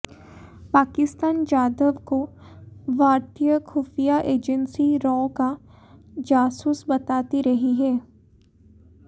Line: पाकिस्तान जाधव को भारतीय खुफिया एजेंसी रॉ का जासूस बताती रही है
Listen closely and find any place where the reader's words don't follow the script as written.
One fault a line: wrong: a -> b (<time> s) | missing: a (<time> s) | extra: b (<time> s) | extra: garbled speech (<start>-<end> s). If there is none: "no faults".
no faults